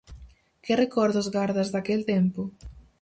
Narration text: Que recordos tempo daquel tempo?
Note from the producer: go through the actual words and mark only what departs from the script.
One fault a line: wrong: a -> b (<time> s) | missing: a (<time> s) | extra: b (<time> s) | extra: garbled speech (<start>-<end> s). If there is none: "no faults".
wrong: tempo -> gardas (1.4 s)